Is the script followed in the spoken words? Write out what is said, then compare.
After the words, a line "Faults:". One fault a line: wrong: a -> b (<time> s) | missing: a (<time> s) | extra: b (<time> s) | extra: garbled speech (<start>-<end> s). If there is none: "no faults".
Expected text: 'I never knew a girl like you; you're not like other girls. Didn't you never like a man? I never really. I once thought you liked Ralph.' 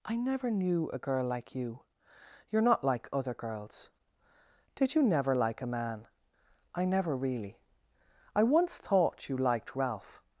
'I never knew a girl like you; you're not like other girls. Did you never like a man? I never really. I once thought you liked Ralph.'
Faults:
wrong: Didn't -> Did (4.7 s)